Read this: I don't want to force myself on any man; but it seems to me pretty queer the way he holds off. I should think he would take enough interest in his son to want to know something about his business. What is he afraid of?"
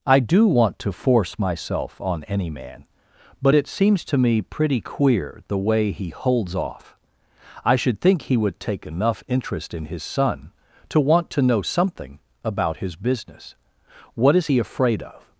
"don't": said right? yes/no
no